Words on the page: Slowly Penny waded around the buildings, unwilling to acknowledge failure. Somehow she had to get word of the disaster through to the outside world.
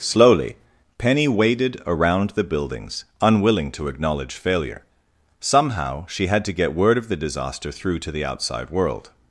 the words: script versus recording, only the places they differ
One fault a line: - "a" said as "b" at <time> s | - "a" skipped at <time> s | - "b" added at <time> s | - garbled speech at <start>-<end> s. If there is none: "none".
none